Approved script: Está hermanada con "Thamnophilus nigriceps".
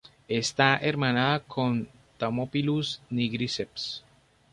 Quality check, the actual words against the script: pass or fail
pass